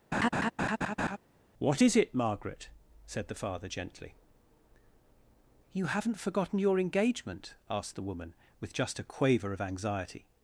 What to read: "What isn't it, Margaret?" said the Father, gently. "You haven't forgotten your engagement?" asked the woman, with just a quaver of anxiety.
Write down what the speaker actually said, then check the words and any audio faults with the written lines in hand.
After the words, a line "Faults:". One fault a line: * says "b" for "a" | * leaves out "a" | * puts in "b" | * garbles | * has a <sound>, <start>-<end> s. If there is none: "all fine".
"What is it, Margaret?" said the Father, gently. "You haven't forgotten your engagement?" asked the woman, with just a quaver of anxiety.
Faults:
* has a laugh, 0.1-1.2 s
* says "is" for "isn't"